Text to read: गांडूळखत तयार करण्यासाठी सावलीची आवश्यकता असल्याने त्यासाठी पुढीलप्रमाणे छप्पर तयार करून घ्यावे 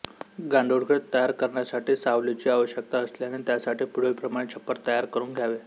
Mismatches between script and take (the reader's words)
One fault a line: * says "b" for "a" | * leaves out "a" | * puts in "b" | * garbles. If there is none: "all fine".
all fine